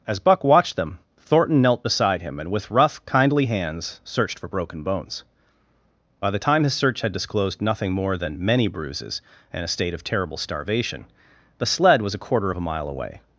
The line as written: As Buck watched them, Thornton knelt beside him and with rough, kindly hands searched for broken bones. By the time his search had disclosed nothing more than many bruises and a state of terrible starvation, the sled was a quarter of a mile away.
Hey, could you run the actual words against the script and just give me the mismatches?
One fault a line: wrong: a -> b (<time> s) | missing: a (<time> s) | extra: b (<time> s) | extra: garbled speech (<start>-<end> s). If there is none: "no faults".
no faults